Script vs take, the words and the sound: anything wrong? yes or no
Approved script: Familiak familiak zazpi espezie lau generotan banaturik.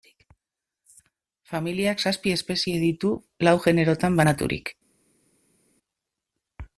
yes